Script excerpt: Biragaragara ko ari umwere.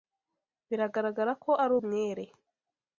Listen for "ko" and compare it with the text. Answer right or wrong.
right